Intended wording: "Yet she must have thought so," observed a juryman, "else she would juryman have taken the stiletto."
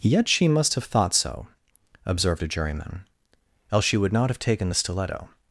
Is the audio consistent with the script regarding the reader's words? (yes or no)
no